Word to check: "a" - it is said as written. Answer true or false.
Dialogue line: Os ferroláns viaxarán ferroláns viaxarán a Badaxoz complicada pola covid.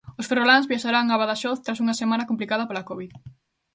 false